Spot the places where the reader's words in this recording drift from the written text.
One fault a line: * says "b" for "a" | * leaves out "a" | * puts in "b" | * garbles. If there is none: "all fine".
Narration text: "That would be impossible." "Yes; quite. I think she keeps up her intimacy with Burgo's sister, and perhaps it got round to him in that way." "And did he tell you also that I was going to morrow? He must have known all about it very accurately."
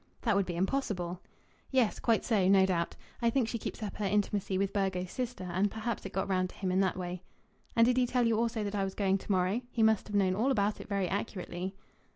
* puts in "so no doubt"